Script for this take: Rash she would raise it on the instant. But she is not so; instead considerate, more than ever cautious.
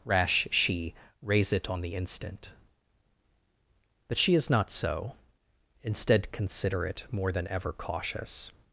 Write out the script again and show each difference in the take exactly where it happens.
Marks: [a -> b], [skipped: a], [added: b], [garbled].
Rash she [skipped: would] raise it on the instant. But she is not so; instead considerate, more than ever cautious.